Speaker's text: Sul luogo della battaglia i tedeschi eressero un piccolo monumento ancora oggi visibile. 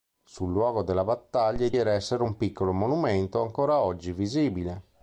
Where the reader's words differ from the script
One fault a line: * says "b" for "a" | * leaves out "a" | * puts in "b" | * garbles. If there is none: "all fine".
* leaves out "tedeschi"